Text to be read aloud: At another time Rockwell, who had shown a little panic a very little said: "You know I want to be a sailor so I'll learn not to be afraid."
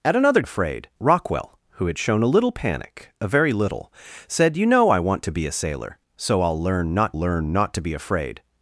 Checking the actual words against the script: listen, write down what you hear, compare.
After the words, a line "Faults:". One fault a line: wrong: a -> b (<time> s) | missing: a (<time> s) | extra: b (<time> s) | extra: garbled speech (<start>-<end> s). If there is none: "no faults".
At another afraid Rockwell, who had shown a little panic a very little said: "You know I want to be a sailor so I'll learn not learn not to be afraid."
Faults:
wrong: time -> afraid (0.4 s)
extra: learn not (7.2 s)